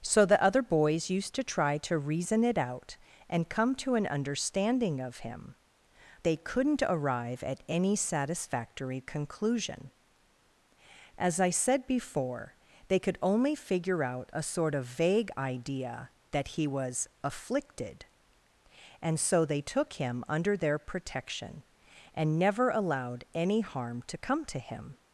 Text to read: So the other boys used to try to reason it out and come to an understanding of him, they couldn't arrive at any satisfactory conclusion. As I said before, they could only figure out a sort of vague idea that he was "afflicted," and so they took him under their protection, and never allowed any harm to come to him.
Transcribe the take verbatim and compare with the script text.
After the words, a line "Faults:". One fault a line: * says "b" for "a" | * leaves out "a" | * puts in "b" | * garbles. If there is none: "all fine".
So the other boys used to try to reason it out and come to an understanding of him, they couldn't arrive at any satisfactory conclusion. As I said before, they could only figure out a sort of vague idea that he was "afflicted," and so they took him under their protection, and never allowed any harm to come to him.
Faults:
all fine